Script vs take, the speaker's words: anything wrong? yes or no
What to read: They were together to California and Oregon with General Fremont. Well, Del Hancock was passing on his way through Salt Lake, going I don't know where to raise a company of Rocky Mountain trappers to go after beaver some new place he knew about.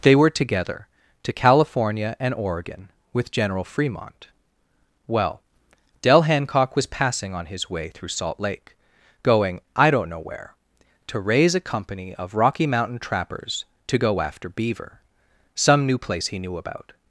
no